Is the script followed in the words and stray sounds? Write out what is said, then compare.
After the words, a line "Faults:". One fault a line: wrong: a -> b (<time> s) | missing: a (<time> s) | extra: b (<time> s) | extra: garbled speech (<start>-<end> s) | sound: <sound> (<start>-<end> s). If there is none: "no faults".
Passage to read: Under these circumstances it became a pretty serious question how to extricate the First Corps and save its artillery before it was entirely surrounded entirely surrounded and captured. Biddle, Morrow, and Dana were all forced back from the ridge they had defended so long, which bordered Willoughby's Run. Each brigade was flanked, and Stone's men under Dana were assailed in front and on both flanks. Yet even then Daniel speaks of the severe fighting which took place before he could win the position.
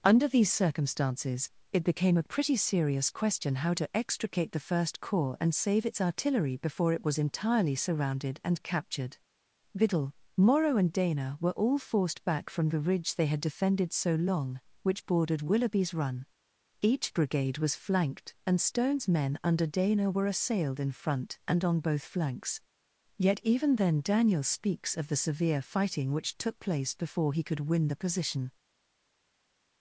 Under these circumstances it became a pretty serious question how to extricate the First Corps and save its artillery before it was entirely surrounded and captured. Biddle, Morrow, and Dana were all forced back from the ridge they had defended so long, which bordered Willoughby's Run. Each brigade was flanked, and Stone's men under Dana were assailed in front and on both flanks. Yet even then Daniel speaks of the severe fighting which took place before he could win the position.
Faults:
missing: entirely surrounded (8.4 s)